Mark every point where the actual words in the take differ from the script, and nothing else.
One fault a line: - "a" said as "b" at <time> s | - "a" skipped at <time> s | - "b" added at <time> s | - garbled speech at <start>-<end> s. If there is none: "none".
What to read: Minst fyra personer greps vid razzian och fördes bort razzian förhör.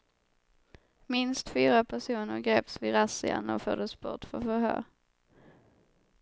- "razzian" said as "för" at 4.2 s